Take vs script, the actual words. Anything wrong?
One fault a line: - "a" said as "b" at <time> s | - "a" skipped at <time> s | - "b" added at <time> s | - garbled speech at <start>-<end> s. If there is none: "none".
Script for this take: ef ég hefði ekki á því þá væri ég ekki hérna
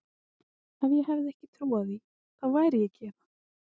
- "trú" added at 1.6 s